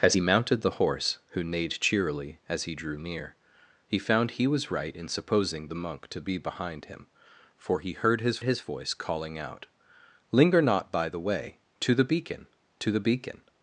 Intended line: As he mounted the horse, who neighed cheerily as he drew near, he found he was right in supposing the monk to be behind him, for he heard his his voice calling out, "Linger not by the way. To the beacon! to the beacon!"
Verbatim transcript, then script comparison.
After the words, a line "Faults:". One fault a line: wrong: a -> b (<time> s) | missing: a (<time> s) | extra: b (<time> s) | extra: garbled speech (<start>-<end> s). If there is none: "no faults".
As he mounted the horse, who neighed cheerily as he drew near, he found he was right in supposing the monk to be behind him, for he heard his his voice calling out, "Linger not by the way. To the beacon! to the beacon!"
Faults:
no faults